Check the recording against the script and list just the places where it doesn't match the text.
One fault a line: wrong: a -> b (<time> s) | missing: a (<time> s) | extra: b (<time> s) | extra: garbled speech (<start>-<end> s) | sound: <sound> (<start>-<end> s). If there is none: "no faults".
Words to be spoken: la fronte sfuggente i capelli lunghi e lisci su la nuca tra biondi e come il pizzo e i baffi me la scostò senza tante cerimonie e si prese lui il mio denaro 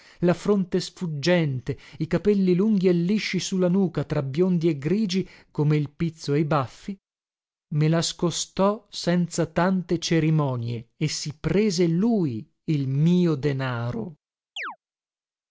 extra: grigi (4.8 s)
sound: chirp (14.6-14.8 s)